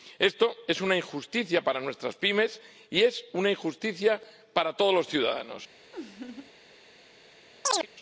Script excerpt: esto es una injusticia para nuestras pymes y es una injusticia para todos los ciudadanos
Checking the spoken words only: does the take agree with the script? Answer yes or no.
yes